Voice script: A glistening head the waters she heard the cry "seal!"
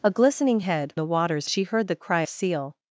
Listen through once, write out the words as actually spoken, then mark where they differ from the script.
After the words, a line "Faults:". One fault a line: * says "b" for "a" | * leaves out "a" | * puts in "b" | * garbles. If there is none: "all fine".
A glistening head the waters she heard the cry "seal!"
Faults:
all fine